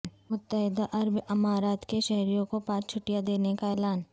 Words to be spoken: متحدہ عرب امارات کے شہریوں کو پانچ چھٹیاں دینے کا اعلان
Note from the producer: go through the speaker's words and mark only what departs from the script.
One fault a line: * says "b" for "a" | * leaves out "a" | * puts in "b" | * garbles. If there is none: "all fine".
all fine